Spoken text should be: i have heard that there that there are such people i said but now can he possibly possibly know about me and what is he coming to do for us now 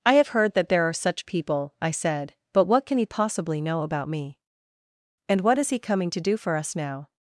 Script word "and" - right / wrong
right